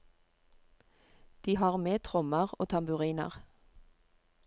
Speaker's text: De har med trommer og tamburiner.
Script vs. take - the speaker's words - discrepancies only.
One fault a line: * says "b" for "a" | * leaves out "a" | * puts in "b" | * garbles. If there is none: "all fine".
all fine